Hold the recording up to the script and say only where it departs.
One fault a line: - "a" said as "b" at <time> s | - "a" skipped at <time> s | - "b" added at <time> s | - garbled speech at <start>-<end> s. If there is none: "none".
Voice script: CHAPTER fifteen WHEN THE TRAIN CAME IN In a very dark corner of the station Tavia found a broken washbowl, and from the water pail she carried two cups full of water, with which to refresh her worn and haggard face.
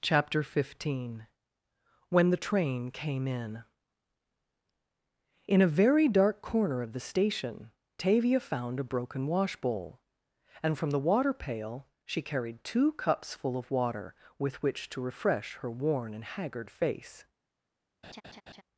none